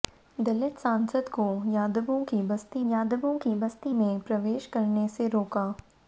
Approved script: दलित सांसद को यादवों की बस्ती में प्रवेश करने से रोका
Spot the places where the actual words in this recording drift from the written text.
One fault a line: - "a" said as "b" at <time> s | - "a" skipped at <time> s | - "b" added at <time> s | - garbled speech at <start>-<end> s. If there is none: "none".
- "यादवों की बस्ती" added at 2.9 s